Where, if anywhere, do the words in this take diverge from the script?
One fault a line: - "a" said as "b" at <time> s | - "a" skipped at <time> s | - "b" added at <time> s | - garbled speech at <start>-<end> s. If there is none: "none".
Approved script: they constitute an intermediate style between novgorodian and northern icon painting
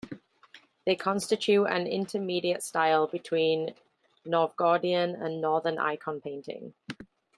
none